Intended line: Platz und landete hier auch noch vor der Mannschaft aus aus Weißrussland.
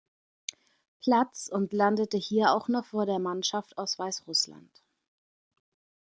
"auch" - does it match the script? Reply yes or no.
yes